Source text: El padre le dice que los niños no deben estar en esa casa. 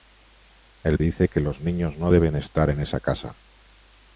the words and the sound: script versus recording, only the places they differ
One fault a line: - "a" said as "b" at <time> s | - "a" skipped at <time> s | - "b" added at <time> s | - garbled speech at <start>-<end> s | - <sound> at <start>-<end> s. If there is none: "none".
- "padre le" skipped at 1.0 s